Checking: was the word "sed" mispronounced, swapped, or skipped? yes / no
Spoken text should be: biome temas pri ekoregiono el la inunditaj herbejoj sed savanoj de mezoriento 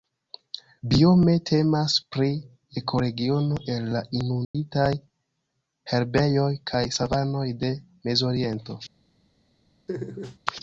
yes